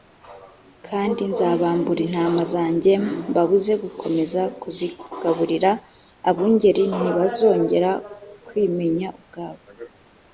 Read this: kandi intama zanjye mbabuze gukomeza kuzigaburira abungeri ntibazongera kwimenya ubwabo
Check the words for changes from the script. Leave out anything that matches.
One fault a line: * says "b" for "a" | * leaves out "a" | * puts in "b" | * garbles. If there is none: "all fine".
* puts in "nzabambura"